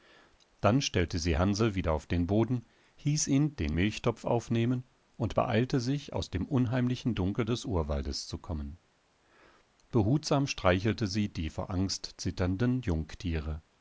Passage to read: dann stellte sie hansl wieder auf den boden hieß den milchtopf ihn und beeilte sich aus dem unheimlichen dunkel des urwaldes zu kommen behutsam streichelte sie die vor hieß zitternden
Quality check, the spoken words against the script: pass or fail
fail